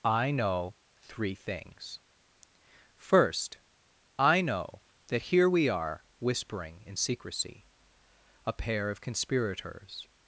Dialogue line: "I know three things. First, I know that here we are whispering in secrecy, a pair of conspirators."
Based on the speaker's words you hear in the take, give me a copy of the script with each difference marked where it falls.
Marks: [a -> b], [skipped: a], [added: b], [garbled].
"I know three things. First, I know that here we are whispering in secrecy, a pair of conspirators."